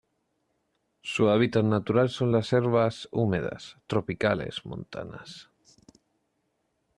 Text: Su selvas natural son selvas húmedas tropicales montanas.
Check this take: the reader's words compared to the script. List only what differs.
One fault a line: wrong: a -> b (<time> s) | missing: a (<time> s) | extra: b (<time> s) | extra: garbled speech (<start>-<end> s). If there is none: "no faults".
wrong: selvas -> hábitat (1.3 s)
extra: las (2.3 s)